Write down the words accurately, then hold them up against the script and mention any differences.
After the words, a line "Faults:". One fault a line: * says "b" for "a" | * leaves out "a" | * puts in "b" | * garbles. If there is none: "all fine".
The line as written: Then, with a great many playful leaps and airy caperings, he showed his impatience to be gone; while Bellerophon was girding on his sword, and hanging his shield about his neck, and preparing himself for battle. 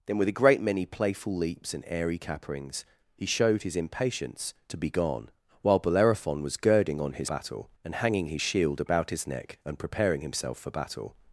Then, with a great many playful leaps and airy caperings, he showed his impatience to be gone; while Bellerophon was girding on his battle, and hanging his shield about his neck, and preparing himself for battle.
Faults:
* says "battle" for "sword"